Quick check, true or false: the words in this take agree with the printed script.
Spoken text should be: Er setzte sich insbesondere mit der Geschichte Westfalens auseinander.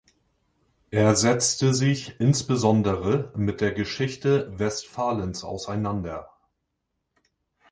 true